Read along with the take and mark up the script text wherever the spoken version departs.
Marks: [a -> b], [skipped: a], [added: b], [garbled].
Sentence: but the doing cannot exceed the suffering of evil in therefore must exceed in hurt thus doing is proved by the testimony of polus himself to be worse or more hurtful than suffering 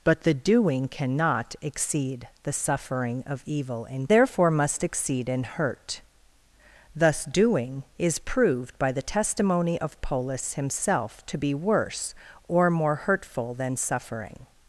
but the doing cannot exceed the suffering of evil in therefore must exceed in hurt thus doing is proved by the testimony of polus himself to be worse or more hurtful than suffering